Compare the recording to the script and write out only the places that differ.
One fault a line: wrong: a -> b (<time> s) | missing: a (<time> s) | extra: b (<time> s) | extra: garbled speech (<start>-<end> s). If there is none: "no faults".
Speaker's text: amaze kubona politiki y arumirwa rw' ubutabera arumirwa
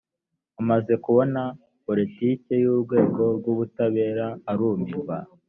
wrong: arumirwa -> urwego (2.7 s)